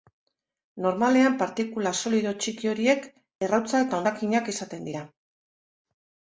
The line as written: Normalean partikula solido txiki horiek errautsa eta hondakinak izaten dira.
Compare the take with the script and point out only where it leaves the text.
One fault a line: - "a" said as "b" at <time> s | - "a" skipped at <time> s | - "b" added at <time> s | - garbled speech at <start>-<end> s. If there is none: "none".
none